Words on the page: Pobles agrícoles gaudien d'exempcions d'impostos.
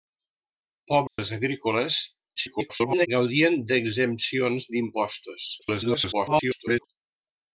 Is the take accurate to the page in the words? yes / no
no